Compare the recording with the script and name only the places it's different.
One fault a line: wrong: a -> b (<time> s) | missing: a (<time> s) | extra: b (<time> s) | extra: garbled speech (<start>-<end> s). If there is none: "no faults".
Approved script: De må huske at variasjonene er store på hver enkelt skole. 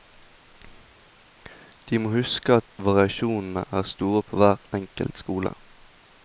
no faults